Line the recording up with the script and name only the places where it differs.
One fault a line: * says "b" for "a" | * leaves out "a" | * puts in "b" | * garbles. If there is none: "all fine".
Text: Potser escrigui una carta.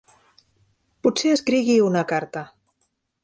all fine